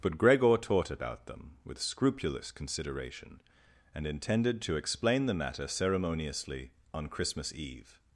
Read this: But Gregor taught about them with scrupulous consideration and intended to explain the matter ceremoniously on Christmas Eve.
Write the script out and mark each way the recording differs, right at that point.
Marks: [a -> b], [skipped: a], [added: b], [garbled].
But Gregor taught about them with scrupulous consideration and intended to explain the matter ceremoniously on Christmas Eve.